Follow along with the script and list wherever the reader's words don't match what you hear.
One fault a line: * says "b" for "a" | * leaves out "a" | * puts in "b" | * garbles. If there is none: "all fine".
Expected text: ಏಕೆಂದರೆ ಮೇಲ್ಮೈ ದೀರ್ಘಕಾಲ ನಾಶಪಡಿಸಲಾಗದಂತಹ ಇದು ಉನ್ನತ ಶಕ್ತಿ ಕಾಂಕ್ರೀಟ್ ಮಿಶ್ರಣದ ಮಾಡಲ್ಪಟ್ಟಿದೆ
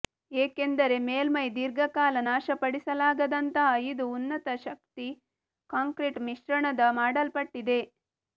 all fine